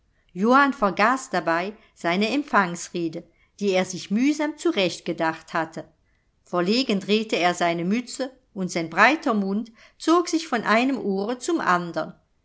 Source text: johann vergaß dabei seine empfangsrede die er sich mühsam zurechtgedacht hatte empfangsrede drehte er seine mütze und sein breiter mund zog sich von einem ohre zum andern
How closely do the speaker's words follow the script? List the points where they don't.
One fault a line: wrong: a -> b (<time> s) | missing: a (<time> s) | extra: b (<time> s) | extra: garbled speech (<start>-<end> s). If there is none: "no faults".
wrong: empfangsrede -> verlegen (6.5 s)